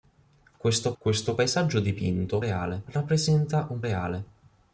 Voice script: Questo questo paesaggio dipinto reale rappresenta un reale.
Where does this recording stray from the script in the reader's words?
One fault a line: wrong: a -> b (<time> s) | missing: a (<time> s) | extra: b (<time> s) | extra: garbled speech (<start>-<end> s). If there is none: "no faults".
no faults